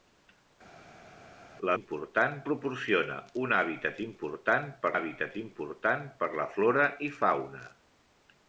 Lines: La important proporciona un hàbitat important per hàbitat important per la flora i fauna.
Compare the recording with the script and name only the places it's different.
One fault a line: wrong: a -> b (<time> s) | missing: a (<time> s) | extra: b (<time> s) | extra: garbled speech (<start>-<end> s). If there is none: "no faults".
no faults